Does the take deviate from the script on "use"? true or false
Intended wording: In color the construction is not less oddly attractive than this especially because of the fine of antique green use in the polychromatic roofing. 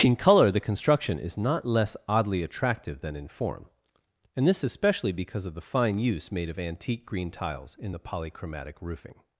true